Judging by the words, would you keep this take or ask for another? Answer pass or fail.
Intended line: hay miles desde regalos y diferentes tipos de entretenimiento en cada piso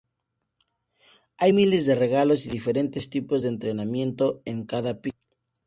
fail